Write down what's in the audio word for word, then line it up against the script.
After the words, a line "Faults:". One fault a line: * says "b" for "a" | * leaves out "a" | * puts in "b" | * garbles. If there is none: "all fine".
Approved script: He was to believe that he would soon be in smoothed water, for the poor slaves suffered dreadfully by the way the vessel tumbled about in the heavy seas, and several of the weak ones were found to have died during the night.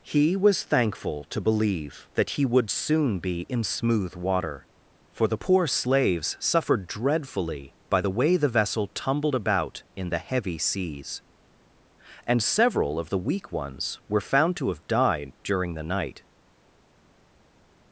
He was thankful to believe that he would soon be in smooth water, for the poor slaves suffered dreadfully by the way the vessel tumbled about in the heavy seas, and several of the weak ones were found to have died during the night.
Faults:
* puts in "thankful"
* says "smooth" for "smoothed"